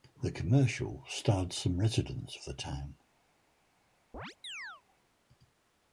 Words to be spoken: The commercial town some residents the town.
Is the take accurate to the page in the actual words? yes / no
no